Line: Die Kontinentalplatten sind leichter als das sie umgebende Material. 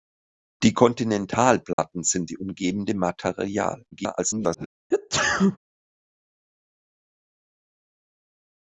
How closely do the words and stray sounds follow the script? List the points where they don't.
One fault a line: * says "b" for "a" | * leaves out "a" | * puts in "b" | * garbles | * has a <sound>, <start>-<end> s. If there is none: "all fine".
* has a dropout, 1.7-1.8 s
* leaves out "leichter als das"
* garbles
* has a sneeze, 4.9-5.6 s